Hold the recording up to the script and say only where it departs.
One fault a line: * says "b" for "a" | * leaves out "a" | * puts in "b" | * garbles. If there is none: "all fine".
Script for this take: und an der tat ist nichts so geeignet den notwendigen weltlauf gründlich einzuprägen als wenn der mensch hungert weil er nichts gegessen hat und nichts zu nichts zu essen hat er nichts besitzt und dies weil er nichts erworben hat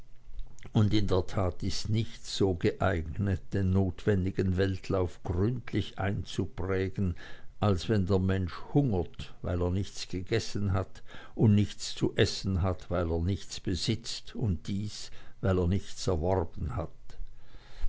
* says "in" for "an"
* leaves out "nichts zu"
* puts in "weil"